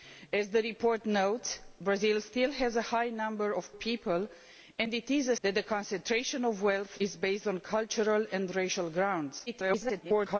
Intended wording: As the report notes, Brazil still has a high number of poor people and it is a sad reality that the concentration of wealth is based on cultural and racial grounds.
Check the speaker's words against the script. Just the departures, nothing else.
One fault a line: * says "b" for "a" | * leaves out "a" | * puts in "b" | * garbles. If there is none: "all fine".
* leaves out "poor"
* leaves out "sad reality"
* garbles